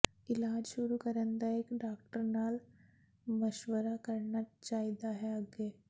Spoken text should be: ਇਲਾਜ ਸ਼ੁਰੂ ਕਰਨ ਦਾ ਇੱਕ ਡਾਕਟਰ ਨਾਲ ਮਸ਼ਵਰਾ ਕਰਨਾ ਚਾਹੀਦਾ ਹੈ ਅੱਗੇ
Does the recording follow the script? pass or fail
pass